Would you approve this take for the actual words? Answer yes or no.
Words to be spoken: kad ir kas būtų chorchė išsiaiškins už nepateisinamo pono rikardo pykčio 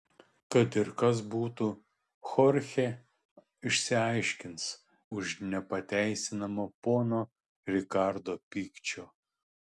yes